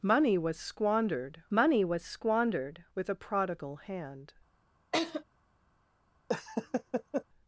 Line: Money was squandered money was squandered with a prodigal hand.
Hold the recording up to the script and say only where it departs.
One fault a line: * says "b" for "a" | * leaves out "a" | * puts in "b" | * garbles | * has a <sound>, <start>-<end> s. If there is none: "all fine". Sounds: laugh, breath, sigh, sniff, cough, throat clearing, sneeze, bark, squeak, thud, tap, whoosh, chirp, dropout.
* has a laugh, 4.9-5.2 s
* has a laugh, 6.3-7.2 s